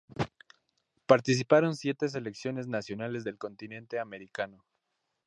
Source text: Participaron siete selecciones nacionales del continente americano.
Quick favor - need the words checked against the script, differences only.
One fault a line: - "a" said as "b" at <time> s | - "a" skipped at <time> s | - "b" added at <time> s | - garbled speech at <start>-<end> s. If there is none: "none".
none